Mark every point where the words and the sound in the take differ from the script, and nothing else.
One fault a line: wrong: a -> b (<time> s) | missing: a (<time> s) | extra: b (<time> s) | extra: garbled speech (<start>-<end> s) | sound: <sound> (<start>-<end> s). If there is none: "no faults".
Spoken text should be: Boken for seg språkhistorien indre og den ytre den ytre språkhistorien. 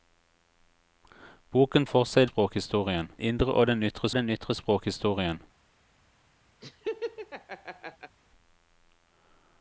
sound: laugh (6.6-8.2 s)